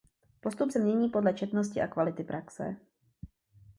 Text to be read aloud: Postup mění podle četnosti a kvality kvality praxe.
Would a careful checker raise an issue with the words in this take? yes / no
yes